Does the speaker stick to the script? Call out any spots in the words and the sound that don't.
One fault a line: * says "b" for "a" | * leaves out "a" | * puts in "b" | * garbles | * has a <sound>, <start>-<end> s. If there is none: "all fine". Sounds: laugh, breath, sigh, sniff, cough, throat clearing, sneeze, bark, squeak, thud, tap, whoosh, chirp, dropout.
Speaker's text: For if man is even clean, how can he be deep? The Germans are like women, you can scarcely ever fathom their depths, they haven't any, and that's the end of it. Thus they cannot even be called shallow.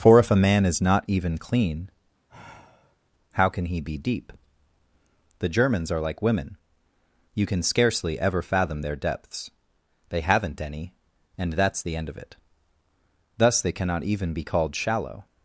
* puts in "a"
* puts in "not"
* has a sigh, 2.3-3.0 s